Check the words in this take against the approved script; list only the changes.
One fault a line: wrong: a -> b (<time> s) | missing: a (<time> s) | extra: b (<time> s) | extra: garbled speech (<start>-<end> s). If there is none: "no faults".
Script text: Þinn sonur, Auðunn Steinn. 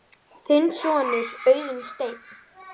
no faults